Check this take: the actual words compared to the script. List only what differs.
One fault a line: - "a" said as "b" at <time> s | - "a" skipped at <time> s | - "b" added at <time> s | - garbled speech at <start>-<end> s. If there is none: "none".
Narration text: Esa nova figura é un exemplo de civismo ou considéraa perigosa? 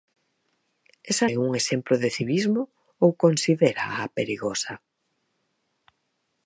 - "nova figura" skipped at 1.3 s